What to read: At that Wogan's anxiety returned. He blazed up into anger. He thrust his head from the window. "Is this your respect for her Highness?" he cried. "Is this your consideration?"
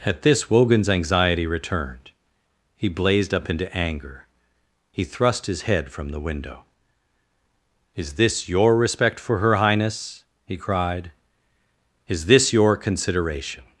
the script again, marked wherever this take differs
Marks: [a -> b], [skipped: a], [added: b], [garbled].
At [that -> this] Wogan's anxiety returned. He blazed up into anger. He thrust his head from the window. "Is this your respect for her Highness?" he cried. "Is this your consideration?"